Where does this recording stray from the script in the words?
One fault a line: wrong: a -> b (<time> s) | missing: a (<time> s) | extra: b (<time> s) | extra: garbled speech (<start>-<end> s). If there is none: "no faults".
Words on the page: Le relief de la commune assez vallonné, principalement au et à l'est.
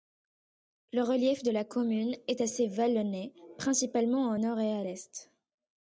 extra: est (2.3 s)
extra: nord (4.4 s)